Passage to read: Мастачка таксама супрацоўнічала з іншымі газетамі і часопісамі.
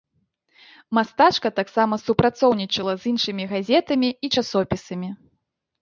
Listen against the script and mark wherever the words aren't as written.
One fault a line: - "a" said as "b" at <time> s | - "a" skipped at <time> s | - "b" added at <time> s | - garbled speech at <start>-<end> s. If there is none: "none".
none